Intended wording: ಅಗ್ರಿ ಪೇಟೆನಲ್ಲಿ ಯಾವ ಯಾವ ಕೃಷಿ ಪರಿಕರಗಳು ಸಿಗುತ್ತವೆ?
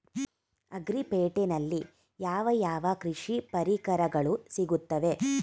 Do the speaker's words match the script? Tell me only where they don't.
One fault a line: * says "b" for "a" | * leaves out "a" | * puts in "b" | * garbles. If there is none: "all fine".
all fine